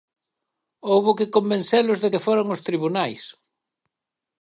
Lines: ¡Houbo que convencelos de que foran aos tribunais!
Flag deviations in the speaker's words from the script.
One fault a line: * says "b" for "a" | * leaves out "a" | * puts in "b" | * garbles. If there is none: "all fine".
all fine